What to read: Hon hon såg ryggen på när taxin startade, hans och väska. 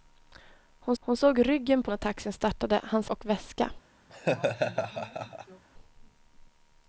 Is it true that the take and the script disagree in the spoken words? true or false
false